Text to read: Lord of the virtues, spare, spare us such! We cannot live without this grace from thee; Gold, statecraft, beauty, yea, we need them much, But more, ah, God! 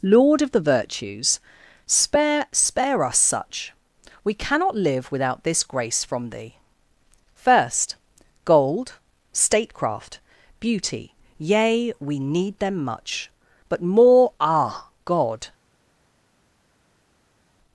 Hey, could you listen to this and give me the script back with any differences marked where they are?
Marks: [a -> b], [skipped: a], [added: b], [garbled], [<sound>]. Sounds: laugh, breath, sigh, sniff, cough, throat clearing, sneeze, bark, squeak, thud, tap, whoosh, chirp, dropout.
Lord of the virtues, spare, spare us such! We cannot live without this grace from thee; [added: first] Gold, statecraft, beauty, yea, we need them much, But more, ah, God!